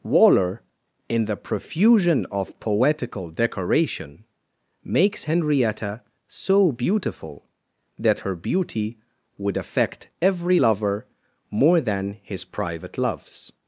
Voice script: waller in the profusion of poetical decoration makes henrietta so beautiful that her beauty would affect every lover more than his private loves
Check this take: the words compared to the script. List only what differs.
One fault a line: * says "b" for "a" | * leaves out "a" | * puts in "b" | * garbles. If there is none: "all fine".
all fine